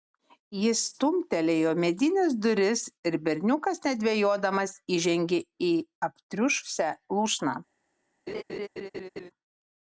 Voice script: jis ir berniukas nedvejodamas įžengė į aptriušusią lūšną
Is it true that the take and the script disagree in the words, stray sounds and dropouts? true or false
true